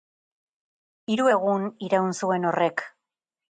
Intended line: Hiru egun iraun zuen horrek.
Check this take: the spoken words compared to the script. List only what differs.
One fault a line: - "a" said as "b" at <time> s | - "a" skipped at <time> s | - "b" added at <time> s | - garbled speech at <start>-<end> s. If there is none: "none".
none